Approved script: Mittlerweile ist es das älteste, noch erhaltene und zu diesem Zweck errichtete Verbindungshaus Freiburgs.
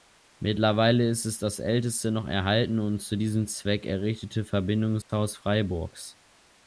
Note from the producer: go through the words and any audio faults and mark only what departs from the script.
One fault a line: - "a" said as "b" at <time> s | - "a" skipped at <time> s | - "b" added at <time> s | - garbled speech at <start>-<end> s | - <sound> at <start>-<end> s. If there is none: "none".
- dropout at 5.0-5.1 s